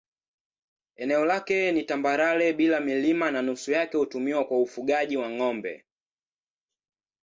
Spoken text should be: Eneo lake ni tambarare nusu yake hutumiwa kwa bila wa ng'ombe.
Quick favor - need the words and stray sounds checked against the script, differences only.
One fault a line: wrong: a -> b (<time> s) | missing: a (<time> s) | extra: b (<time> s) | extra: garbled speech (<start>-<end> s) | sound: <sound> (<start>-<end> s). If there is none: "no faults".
extra: bila milima na (2.5 s)
wrong: bila -> ufugaji (4.6 s)